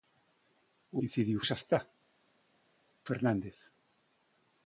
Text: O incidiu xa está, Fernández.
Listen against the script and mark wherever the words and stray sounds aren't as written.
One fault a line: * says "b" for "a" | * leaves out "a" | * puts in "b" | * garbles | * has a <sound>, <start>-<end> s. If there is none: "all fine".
all fine